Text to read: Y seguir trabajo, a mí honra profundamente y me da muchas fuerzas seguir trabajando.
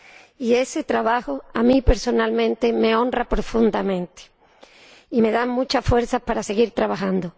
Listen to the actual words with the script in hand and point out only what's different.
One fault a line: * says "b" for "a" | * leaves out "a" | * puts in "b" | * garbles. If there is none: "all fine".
* says "ese" for "seguir"
* puts in "personalmente me"
* puts in "para"